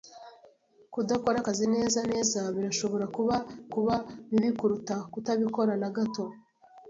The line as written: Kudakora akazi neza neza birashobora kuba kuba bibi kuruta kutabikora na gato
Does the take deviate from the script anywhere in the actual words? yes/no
no